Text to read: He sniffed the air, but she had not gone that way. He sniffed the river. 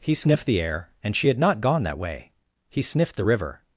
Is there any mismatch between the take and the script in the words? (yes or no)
yes